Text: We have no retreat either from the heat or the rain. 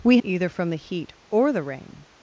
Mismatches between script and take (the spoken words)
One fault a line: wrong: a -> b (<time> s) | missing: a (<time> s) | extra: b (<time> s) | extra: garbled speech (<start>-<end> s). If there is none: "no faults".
missing: have no retreat (0.2 s)